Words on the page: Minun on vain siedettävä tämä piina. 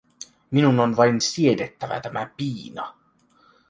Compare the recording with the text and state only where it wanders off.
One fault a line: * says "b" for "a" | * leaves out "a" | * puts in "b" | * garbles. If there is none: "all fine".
all fine